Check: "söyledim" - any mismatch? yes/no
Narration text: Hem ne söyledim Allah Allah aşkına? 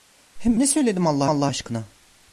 no